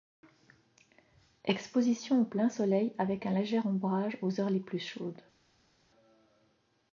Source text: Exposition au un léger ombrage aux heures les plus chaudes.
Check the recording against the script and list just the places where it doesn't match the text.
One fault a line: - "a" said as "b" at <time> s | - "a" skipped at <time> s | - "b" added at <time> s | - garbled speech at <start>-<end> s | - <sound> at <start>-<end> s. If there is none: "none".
- "plein soleil avec" added at 2.2 s